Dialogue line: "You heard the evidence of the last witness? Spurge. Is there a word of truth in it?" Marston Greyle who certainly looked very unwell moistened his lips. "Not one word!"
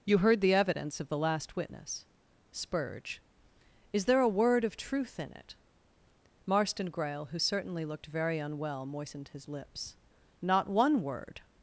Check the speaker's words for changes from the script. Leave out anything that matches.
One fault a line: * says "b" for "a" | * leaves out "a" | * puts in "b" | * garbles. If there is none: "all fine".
all fine